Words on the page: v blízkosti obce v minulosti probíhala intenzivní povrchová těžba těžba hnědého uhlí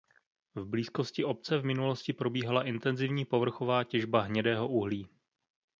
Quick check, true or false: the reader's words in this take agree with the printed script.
false